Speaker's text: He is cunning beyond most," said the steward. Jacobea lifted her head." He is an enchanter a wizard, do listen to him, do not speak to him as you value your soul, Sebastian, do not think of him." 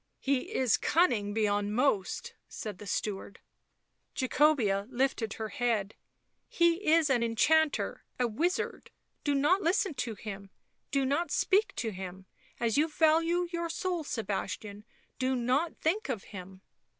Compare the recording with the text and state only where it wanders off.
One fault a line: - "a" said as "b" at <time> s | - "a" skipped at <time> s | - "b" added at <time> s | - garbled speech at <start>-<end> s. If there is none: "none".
- "not" added at 9.3 s